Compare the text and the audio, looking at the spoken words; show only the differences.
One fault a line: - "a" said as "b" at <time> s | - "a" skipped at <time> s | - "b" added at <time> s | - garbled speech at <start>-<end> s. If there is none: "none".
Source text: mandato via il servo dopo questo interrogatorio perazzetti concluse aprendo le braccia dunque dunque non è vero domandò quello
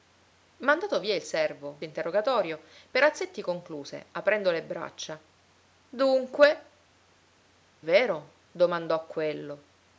- "dopo questo" skipped at 1.8 s
- "dunque non è" skipped at 6.7 s